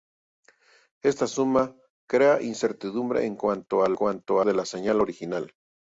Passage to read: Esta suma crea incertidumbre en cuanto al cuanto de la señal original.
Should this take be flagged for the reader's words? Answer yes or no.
no